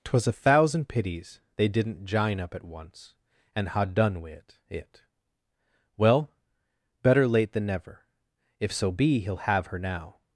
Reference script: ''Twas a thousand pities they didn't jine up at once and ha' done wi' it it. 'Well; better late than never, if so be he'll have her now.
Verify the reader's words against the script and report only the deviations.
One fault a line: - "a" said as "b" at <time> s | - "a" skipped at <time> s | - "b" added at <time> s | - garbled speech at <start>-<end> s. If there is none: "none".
none